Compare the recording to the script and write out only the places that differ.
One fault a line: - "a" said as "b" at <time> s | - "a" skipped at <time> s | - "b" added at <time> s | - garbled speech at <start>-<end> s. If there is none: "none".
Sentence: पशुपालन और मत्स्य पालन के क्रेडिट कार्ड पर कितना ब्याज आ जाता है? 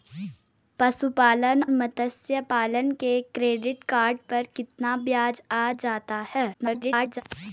- "और" skipped at 1.6 s
- garbled speech at 6.5-7.2 s